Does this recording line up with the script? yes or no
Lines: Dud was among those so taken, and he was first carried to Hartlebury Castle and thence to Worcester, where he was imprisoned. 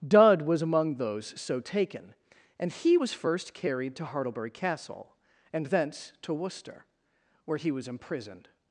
yes